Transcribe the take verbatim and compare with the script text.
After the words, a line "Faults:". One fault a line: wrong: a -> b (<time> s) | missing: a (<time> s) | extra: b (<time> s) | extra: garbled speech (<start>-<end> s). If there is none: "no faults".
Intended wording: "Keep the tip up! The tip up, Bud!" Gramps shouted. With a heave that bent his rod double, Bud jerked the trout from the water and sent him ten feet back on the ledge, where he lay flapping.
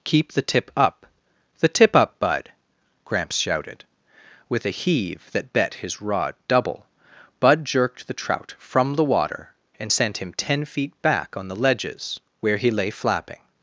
"Keep the tip up! The tip up, Bud!" Gramps shouted. With a heave that bet his rod double, Bud jerked the trout from the water and sent him ten feet back on the ledges, where he lay flapping.
Faults:
wrong: bent -> bet (5.5 s)
wrong: ledge -> ledges (11.6 s)